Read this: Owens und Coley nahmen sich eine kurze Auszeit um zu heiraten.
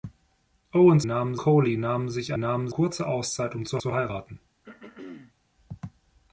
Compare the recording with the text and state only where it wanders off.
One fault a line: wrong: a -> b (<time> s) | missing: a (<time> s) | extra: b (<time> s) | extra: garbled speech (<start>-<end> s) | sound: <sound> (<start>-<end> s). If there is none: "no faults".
wrong: und -> nahmen (1.0 s)
wrong: eine -> nahmen (2.4 s)
extra: zu (3.8 s)
sound: throat clearing (4.6-5.3 s)